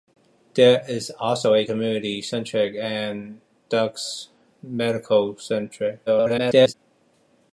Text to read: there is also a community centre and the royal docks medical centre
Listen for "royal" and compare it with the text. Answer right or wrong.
wrong